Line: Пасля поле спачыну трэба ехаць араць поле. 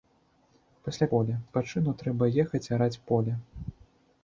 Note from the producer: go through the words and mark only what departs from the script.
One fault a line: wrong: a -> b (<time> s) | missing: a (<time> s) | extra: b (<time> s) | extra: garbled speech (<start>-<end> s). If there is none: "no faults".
no faults